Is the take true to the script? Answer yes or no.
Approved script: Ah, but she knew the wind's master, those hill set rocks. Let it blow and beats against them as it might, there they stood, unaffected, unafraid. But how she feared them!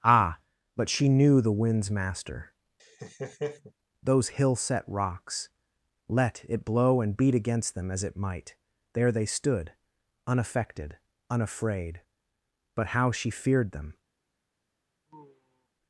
no